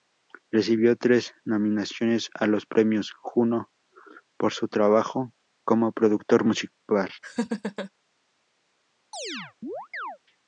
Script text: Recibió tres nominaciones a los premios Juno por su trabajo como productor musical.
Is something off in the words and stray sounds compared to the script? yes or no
yes